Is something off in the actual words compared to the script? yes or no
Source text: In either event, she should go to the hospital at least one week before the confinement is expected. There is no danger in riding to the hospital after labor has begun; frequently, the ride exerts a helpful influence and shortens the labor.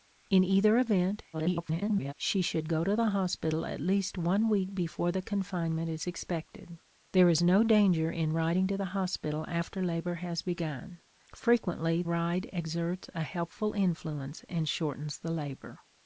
yes